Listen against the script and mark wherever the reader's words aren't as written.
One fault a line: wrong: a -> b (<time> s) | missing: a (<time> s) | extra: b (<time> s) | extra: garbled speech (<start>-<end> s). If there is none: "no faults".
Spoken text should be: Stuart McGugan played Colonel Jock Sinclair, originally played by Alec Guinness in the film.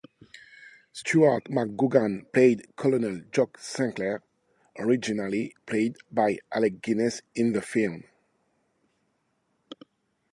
no faults